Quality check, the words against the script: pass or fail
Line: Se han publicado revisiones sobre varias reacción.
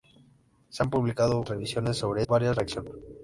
pass